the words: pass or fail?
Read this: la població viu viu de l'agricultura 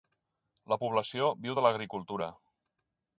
fail